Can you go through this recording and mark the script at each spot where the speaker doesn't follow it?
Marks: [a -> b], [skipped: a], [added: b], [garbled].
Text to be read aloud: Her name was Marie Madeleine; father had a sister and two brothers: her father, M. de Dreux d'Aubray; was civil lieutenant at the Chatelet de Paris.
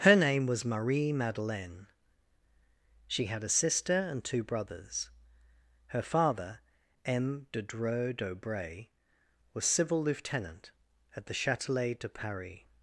Her name was Marie Madeleine; [father -> she] had a sister and two brothers: her father, M. de Dreux d'Aubray; was civil lieutenant at the Chatelet de Paris.